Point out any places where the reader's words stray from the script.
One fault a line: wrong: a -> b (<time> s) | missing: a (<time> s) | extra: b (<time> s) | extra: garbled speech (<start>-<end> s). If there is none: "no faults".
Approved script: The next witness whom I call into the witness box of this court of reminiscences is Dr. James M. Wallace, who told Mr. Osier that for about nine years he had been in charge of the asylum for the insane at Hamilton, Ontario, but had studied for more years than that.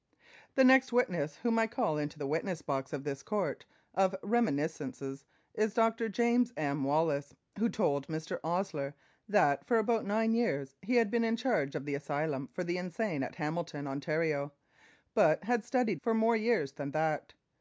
no faults